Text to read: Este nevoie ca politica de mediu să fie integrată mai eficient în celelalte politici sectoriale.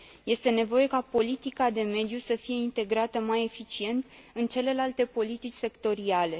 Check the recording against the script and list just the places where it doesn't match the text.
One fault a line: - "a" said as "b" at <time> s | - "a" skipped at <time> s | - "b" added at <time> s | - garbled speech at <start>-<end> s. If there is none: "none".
none